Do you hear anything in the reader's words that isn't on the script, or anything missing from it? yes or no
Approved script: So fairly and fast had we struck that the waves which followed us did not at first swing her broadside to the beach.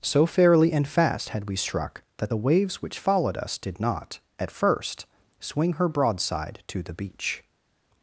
no